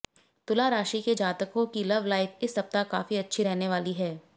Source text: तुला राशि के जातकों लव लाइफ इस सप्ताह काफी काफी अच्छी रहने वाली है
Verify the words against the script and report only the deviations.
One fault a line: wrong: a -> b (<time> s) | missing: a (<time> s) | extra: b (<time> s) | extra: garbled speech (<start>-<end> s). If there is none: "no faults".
extra: की (1.7 s)
missing: काफी (3.2 s)